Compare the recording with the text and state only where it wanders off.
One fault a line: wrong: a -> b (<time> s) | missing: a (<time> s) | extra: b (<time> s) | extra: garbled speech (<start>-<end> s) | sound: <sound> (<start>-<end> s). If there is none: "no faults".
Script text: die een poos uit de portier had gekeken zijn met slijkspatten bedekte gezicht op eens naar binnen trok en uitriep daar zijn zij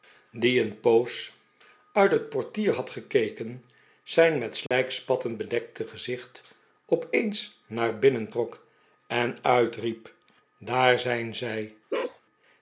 wrong: de -> het (2.1 s)
sound: dropout (4.7-4.7 s)
sound: bark (11.9-12.2 s)